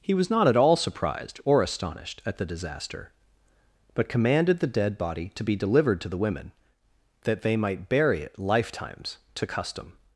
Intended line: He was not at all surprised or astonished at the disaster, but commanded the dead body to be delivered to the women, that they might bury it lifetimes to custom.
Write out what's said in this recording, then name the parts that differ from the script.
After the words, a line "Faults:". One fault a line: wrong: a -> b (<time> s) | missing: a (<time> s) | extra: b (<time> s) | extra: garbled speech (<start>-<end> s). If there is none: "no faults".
He was not at all surprised or astonished at the disaster, but commanded the dead body to be delivered to the women, that they might bury it lifetimes to custom.
Faults:
no faults